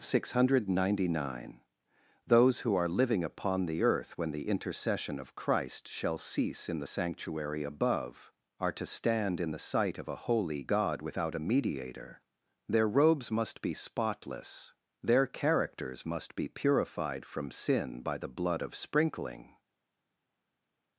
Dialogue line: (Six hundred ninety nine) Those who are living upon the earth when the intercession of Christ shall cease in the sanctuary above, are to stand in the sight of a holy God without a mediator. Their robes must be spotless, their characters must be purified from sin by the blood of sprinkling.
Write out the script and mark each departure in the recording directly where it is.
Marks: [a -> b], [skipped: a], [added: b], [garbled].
(Six hundred ninety nine) Those who are living upon the earth when the intercession of Christ shall cease in the sanctuary above, are to stand in the sight of a holy God without a mediator. Their robes must be spotless, their characters must be purified from sin by the blood of sprinkling.